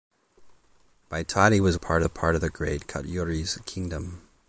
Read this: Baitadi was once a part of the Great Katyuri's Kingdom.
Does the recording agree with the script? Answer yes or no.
no